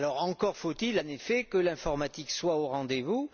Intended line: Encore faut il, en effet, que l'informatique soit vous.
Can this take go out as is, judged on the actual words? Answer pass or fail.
fail